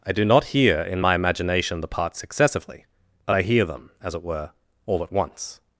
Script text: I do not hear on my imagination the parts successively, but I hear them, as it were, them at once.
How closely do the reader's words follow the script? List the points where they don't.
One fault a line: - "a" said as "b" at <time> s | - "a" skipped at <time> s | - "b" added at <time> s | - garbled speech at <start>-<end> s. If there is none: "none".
- "on" said as "in" at 0.8 s
- "them" said as "all" at 4.9 s